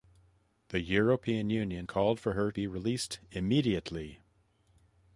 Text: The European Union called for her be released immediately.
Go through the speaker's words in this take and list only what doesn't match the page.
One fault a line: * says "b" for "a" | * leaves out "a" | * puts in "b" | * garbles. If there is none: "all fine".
all fine